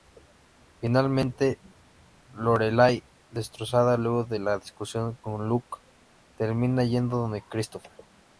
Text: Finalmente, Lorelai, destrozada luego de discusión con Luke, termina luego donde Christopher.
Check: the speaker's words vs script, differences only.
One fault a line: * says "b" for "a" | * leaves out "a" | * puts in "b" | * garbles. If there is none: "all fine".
* puts in "la"
* says "yendo" for "luego"